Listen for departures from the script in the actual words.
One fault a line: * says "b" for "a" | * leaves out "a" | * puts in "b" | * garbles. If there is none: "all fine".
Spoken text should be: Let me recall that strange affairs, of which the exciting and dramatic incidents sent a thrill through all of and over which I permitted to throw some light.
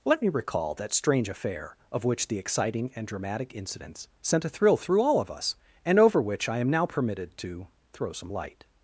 * says "affair" for "affairs"
* puts in "us"
* puts in "am now"